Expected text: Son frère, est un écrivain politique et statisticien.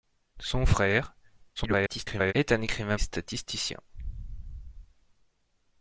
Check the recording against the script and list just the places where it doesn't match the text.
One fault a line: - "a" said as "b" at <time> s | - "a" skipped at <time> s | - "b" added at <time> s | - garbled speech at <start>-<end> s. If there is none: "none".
- garbled speech at 1.6-2.3 s
- "politique" skipped at 3.0 s